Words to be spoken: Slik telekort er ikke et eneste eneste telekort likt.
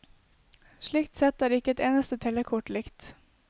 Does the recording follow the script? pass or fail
fail